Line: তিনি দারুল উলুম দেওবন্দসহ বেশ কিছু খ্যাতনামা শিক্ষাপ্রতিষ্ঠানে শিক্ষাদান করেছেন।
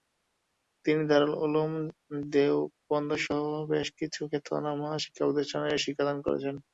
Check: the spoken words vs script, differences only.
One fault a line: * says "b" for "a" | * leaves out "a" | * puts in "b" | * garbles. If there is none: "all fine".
all fine